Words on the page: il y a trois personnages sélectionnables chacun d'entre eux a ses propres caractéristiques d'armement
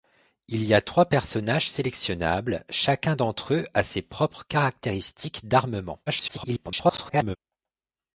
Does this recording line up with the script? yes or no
no